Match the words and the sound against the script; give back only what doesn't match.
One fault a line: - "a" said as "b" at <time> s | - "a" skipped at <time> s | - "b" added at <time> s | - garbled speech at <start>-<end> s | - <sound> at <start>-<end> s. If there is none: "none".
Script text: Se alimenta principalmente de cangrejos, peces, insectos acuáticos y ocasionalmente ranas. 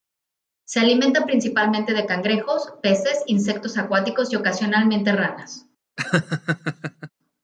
- laugh at 6.0-7.1 s